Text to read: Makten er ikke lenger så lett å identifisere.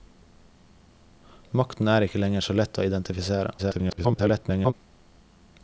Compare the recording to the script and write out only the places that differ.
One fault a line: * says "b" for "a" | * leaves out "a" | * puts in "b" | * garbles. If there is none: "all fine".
* garbles